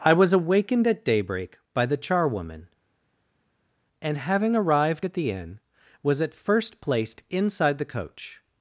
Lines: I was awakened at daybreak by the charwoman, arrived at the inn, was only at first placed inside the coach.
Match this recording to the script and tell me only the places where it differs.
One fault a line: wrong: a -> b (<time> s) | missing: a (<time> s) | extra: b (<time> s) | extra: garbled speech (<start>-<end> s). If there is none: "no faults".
extra: and having (4.0 s)
missing: only (6.2 s)